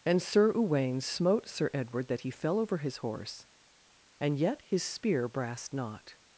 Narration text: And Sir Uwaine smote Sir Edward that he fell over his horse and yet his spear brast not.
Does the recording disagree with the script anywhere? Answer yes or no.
no